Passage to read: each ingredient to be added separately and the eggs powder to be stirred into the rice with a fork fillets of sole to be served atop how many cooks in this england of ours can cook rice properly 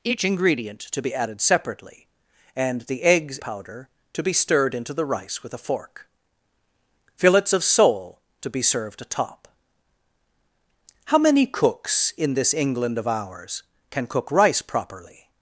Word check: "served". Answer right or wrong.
right